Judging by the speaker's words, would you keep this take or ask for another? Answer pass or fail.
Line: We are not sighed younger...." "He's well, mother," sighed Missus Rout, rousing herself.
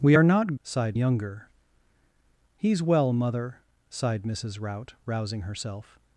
pass